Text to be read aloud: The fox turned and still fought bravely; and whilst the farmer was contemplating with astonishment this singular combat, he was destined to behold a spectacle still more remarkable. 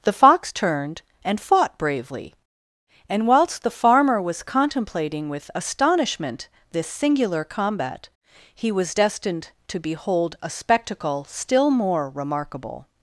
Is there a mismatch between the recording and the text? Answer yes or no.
yes